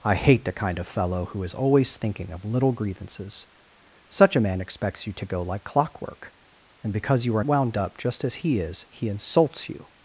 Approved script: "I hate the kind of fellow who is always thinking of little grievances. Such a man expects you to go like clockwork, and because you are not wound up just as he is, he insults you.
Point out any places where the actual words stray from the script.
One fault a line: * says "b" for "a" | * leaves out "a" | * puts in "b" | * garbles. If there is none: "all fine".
* leaves out "not"